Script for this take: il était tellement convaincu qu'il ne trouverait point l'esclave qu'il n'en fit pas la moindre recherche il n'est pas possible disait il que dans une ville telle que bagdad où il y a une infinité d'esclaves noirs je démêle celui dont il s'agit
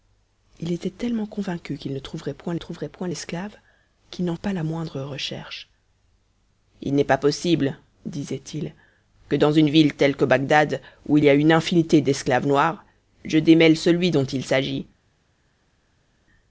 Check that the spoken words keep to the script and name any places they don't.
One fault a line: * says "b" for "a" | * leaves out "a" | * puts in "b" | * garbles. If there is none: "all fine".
* puts in "trouverait point"
* leaves out "fit"